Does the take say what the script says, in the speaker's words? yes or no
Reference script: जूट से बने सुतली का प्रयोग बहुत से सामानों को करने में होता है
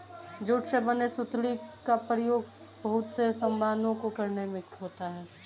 yes